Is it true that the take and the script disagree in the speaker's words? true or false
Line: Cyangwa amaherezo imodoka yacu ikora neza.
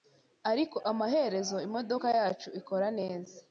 true